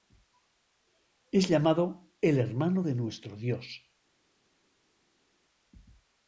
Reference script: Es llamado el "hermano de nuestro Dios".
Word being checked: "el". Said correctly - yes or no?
yes